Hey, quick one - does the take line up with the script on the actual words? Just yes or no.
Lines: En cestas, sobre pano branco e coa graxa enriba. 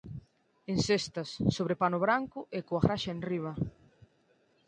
yes